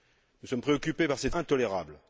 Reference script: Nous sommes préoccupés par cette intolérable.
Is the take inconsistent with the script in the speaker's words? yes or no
no